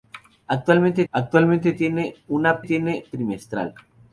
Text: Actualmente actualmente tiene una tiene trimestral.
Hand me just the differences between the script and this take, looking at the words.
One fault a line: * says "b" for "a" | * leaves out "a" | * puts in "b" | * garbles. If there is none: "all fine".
all fine